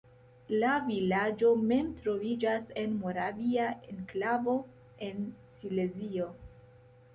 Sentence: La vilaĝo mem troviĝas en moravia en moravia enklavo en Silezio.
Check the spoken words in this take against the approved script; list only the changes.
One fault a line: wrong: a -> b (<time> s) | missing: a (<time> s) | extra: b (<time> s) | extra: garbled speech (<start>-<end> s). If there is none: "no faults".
missing: en moravia (3.7 s)